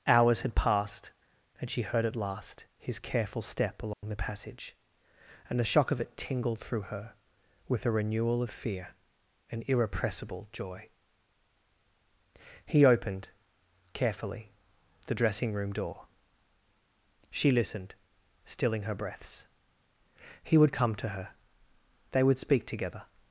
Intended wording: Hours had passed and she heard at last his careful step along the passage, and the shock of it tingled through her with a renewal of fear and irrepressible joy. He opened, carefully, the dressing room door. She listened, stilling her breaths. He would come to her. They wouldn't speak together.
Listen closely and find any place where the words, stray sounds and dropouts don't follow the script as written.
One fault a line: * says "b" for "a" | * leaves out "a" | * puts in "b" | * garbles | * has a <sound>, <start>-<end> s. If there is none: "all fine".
* has a dropout, 3.9-4.0 s
* says "would" for "wouldn't"